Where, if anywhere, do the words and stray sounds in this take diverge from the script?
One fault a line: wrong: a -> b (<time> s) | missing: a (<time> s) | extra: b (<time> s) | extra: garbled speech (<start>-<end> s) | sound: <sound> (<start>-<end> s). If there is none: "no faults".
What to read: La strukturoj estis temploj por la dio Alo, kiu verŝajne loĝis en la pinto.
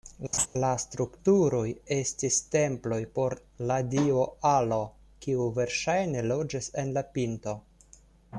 sound: laugh (0.3-0.5 s)